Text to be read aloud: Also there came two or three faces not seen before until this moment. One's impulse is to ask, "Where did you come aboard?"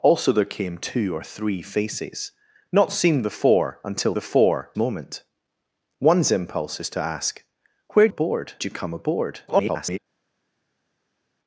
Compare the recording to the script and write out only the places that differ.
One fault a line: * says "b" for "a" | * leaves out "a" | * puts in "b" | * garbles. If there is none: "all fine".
* says "before" for "this"
* says "aboard" for "did"
* garbles